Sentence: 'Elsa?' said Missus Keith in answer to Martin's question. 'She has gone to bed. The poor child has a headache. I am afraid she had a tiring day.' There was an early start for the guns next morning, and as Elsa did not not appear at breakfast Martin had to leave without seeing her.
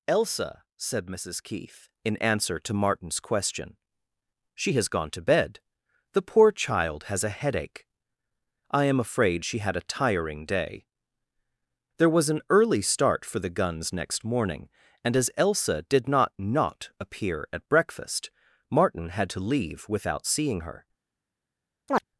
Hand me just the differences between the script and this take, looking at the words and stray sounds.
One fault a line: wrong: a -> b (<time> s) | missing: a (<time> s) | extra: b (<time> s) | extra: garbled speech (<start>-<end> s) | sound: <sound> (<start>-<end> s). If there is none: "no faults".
sound: chirp (21.9-22.0 s)